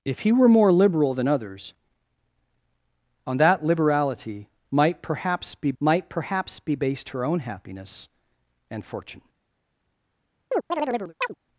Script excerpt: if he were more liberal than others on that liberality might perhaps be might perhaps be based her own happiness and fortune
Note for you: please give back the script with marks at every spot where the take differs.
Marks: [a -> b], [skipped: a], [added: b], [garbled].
if he were more liberal than others on that liberality might perhaps be might perhaps be based her own happiness and fortune